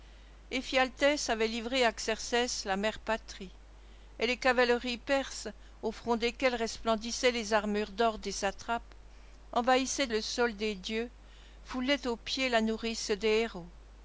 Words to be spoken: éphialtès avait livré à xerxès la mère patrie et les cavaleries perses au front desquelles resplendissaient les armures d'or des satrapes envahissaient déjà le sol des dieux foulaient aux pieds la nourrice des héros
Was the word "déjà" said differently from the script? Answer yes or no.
yes